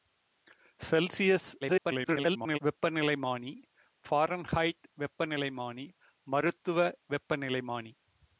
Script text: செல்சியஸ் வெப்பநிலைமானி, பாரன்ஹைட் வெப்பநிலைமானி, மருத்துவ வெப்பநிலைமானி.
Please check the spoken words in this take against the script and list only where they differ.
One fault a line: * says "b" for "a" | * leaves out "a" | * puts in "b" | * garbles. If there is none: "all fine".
* garbles